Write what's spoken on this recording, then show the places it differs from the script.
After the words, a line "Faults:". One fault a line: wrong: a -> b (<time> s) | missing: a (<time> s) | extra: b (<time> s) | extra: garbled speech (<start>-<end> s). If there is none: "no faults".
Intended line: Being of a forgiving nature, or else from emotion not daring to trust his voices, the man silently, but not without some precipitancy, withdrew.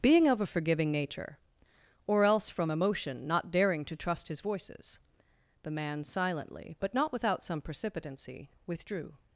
Being of a forgiving nature, or else from emotion not daring to trust his voices, the man silently, but not without some precipitancy, withdrew.
Faults:
no faults